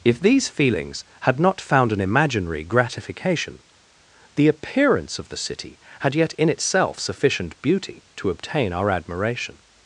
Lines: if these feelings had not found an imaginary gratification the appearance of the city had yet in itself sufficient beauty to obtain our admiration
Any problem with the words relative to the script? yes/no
no